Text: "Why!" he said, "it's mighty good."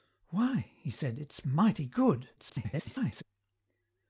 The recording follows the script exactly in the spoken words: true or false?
false